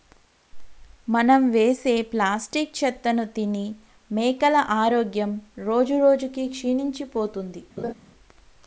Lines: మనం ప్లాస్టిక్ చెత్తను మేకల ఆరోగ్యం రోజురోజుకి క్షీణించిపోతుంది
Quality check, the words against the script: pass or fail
fail